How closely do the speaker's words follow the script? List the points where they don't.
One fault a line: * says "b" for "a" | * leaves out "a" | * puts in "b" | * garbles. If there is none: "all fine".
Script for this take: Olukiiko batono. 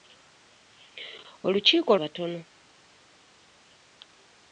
all fine